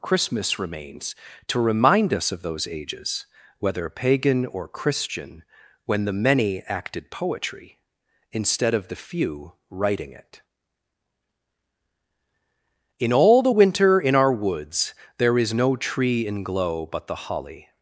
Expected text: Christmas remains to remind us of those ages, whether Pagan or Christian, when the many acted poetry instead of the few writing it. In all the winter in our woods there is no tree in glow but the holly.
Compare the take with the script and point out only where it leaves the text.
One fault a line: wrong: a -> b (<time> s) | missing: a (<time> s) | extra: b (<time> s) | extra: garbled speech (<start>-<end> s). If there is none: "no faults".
no faults